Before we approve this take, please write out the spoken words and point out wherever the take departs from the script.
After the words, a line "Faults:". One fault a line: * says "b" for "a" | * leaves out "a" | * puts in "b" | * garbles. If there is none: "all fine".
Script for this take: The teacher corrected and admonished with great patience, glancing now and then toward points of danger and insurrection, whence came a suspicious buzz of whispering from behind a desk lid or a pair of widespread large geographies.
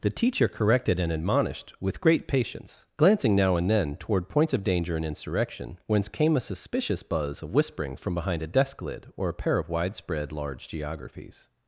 The teacher corrected and admonished with great patience, glancing now and then toward points of danger and insurrection, whence came a suspicious buzz of whispering from behind a desk lid or a pair of widespread large geographies.
Faults:
all fine